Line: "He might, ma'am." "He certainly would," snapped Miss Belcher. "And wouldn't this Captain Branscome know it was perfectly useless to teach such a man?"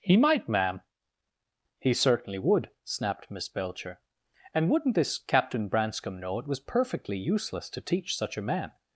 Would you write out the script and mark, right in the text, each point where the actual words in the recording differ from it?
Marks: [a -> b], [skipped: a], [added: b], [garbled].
"He might, ma'am." "He certainly would," snapped Miss Belcher. "And wouldn't this Captain Branscome know it was perfectly useless to teach such a man?"